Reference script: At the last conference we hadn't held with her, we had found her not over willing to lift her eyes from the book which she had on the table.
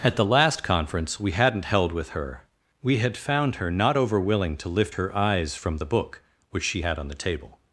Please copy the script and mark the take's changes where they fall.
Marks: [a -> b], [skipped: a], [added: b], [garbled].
At the last conference we hadn't held with her, we had found her not over willing to lift her eyes from the book which she had on the table.